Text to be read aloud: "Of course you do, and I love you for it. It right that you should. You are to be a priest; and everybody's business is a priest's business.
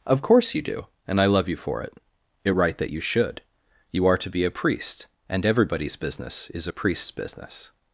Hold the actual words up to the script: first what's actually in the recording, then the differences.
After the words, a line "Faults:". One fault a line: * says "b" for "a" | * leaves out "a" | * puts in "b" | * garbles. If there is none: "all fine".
"Of course you do, and I love you for it. It right that you should. You are to be a priest; and everybody's business is a priest's business.
Faults:
all fine